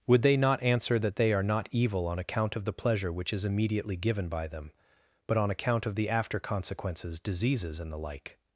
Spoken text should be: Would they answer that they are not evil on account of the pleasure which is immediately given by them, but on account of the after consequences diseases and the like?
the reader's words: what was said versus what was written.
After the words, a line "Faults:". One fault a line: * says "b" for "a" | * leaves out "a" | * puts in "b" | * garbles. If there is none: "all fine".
Would they not answer that they are not evil on account of the pleasure which is immediately given by them, but on account of the after consequences diseases and the like?
Faults:
* puts in "not"